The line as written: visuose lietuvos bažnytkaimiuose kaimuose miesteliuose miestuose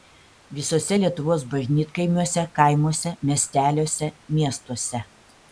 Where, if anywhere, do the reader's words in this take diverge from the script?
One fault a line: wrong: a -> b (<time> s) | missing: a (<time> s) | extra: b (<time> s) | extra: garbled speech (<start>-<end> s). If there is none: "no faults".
no faults